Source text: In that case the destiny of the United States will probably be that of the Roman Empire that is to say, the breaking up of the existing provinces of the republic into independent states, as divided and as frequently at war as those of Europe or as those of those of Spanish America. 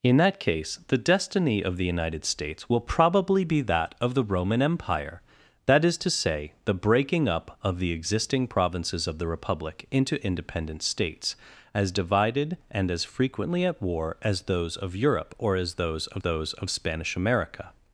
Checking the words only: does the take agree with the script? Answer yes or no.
yes